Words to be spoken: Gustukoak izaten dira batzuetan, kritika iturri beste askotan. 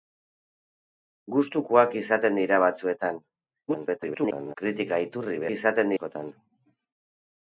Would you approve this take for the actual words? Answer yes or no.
no